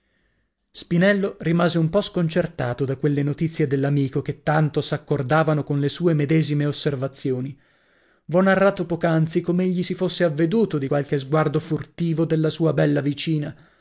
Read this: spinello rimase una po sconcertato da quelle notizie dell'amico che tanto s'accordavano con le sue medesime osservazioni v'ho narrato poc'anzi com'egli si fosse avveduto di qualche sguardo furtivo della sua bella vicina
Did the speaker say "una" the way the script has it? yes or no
no